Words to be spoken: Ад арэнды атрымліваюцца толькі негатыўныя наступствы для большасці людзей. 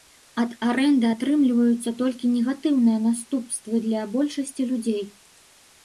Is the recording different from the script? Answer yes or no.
no